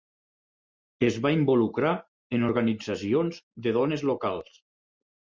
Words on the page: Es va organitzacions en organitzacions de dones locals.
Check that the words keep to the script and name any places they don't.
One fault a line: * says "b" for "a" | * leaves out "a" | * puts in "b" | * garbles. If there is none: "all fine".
* says "involucrar" for "organitzacions"